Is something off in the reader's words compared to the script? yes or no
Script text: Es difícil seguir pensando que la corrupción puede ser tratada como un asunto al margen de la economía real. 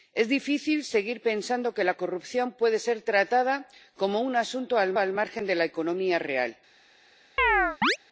yes